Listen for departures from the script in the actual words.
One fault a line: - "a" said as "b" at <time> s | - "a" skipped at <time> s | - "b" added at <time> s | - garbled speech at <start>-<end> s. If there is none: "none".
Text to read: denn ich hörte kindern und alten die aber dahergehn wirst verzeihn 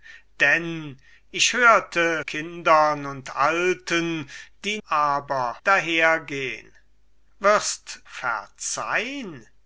none